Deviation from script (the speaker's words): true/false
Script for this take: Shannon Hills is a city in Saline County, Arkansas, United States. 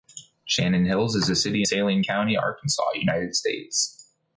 true